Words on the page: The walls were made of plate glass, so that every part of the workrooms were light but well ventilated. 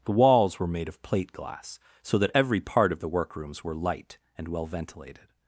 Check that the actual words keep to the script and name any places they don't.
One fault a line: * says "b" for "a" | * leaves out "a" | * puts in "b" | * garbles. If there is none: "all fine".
* says "and" for "but"